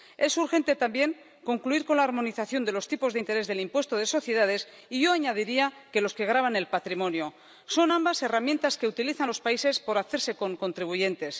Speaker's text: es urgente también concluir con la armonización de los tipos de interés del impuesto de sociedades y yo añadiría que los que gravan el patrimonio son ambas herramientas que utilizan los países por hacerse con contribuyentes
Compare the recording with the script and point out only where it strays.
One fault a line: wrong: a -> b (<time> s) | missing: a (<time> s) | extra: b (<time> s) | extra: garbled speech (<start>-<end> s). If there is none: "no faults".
no faults